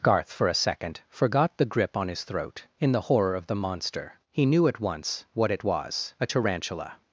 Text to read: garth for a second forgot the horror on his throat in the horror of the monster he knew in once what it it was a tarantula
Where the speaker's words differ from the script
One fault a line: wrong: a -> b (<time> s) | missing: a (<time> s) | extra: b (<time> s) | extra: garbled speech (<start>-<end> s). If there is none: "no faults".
wrong: horror -> grip (1.6 s)
wrong: in -> at (4.7 s)
missing: it (5.6 s)